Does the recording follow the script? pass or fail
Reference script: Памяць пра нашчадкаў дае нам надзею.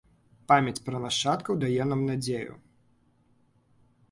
pass